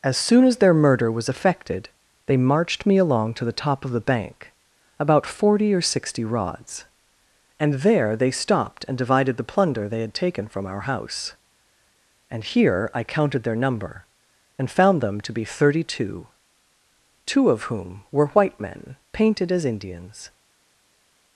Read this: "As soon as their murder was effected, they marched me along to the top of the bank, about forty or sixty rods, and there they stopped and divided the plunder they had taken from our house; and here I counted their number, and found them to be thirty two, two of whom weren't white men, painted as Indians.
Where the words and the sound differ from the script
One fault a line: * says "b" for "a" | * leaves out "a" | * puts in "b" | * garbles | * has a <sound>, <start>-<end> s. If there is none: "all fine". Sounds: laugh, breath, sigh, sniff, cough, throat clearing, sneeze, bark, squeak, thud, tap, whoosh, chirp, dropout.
* says "were" for "weren't"